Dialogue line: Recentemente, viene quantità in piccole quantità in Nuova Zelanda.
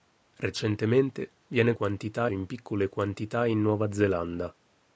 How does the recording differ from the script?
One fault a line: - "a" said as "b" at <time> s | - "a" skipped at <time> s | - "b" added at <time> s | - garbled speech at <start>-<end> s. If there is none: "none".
none